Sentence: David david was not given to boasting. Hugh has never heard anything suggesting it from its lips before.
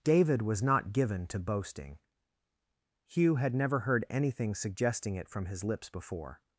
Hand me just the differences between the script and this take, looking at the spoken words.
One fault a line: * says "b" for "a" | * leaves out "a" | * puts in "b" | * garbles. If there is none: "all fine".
* leaves out "david"
* says "had" for "has"
* says "his" for "its"